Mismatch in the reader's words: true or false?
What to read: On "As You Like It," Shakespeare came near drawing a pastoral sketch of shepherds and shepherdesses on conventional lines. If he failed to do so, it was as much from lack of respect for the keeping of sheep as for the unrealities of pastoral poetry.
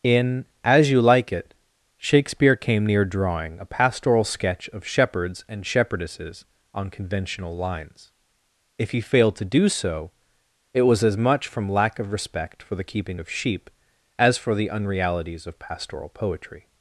true